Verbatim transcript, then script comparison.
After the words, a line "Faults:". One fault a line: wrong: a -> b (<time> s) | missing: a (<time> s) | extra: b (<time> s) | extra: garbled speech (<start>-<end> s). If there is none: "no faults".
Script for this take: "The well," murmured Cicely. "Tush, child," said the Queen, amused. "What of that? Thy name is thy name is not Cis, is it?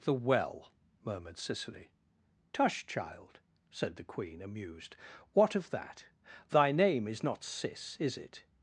"The well," murmured Cicely. "Tush, child," said the Queen, amused. "What of that? Thy name is not Cis, is it?
Faults:
missing: thy name is (7.2 s)